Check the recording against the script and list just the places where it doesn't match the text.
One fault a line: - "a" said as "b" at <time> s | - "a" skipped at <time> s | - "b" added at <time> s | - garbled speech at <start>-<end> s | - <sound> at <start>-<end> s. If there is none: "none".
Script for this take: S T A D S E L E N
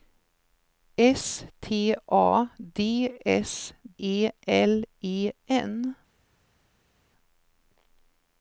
none